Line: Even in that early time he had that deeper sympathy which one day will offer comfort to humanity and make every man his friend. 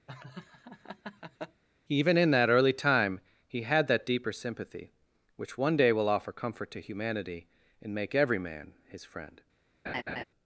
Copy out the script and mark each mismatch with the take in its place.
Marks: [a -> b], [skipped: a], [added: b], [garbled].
Even in that early time he had that deeper sympathy which one day will offer comfort to humanity and make every man his friend.